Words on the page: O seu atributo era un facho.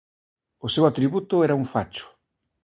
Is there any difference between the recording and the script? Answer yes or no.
no